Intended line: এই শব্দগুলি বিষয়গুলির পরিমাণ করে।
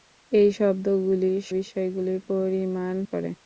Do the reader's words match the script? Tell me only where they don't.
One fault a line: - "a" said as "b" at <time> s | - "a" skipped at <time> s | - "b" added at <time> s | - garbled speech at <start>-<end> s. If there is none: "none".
none